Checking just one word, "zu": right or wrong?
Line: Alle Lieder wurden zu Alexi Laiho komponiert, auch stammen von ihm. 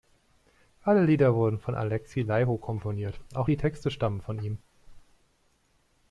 wrong